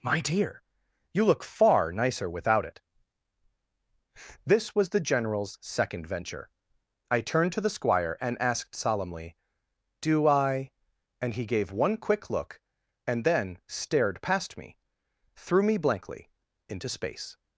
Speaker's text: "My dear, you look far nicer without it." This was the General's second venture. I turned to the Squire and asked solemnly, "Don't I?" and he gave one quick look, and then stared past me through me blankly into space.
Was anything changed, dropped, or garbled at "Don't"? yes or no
yes